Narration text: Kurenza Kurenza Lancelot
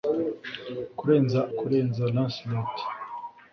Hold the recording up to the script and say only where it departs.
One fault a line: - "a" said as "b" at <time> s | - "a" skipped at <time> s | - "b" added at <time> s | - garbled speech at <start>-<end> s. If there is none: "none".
none